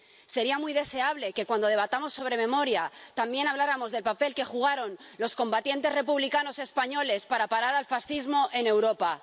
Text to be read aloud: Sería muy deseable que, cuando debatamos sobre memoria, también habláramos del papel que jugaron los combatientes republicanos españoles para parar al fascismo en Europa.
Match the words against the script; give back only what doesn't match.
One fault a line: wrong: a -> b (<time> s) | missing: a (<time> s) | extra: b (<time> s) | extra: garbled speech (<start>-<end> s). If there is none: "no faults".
no faults